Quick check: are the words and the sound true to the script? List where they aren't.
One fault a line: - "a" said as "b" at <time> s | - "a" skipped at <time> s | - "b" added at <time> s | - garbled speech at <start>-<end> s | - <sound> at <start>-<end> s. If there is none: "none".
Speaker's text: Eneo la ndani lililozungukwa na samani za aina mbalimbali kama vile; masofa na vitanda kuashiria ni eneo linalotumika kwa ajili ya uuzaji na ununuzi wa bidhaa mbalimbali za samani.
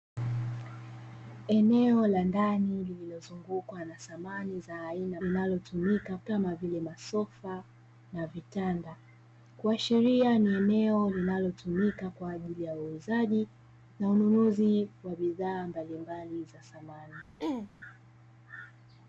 - "mbalimbali" said as "linalotumika" at 5.2 s
- throat clearing at 17.4-17.7 s